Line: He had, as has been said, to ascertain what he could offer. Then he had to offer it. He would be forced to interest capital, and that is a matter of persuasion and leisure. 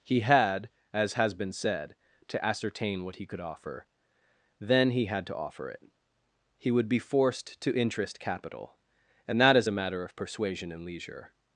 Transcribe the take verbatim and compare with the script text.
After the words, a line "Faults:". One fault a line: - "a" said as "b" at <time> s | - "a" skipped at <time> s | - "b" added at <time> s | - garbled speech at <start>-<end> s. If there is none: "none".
He had, as has been said, to ascertain what he could offer. Then he had to offer it. He would be forced to interest capital, and that is a matter of persuasion and leisure.
Faults:
none